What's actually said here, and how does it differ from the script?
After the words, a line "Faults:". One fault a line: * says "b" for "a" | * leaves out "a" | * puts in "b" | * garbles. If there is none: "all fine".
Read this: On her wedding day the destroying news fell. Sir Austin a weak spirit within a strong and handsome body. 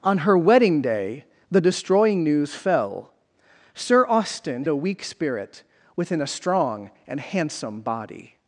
On her wedding day the destroying news fell. Sir Austin a weak spirit within a strong and handsome body.
Faults:
all fine